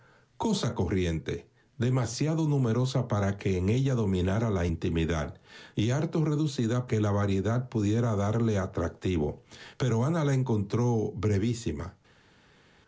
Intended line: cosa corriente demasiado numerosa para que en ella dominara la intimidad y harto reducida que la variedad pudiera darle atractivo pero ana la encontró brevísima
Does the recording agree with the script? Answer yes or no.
yes